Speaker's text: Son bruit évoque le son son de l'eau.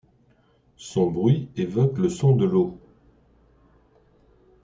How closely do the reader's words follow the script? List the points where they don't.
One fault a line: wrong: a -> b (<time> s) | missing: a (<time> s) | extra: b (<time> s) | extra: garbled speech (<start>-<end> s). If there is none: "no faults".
missing: son (2.4 s)